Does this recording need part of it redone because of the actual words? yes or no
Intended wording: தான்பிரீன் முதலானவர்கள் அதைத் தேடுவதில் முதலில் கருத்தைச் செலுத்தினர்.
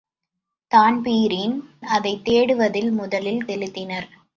yes